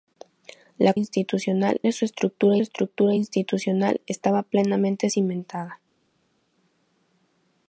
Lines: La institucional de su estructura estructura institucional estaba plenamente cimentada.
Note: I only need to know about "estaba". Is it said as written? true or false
true